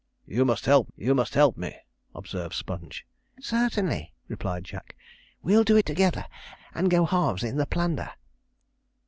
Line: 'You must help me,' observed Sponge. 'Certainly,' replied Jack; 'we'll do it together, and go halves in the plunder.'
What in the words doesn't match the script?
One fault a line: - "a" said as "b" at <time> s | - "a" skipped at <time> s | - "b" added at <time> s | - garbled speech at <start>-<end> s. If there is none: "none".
- "you must help" added at 1.0 s